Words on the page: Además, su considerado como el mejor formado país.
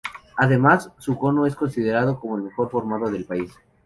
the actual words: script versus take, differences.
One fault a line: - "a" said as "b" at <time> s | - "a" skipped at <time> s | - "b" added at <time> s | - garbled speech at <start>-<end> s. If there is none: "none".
- "cono es" added at 1.2 s
- "del" added at 3.1 s